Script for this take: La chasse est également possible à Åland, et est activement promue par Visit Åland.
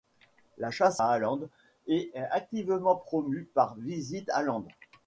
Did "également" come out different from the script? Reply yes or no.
yes